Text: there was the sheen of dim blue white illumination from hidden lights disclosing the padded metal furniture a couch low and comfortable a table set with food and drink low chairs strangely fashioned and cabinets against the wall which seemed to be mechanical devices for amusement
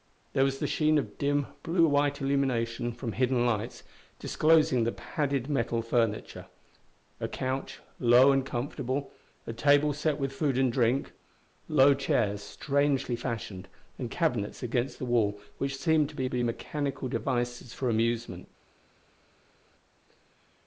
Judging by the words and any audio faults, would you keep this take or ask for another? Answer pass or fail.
fail